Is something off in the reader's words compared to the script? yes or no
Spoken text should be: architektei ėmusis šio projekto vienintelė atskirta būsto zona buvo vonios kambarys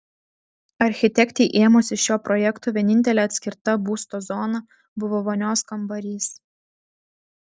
no